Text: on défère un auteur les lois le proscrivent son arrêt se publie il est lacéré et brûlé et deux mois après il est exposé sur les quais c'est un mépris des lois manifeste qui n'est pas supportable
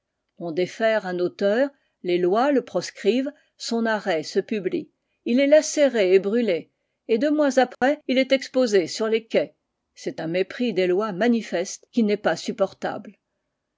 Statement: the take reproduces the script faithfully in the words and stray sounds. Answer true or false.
false